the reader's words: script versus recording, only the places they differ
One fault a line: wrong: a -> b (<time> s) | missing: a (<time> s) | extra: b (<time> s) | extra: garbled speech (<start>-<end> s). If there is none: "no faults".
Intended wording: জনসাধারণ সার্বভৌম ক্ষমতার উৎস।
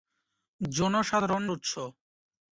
missing: সার্বভৌম ক্ষমতার (1.4 s)